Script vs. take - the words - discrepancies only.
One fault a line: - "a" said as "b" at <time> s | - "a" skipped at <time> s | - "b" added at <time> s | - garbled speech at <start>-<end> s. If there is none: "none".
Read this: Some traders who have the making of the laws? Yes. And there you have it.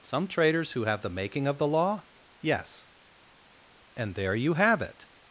- "laws" said as "law" at 1.7 s